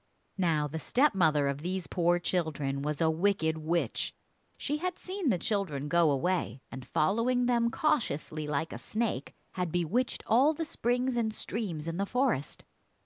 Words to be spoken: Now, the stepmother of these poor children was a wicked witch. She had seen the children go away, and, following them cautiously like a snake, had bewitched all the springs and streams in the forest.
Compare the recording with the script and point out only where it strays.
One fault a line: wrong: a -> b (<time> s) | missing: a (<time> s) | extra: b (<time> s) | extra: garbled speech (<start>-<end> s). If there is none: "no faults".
no faults